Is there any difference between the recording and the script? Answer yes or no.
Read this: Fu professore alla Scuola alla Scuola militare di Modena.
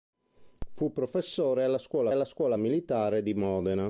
no